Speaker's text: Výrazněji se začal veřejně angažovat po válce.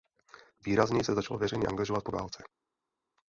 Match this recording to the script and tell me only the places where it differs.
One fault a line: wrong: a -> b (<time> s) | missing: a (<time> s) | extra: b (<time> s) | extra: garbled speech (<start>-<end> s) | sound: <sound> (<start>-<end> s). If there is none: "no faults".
no faults